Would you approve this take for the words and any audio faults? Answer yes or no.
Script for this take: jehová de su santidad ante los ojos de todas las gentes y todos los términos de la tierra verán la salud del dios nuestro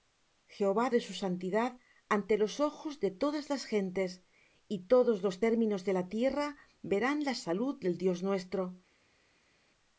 yes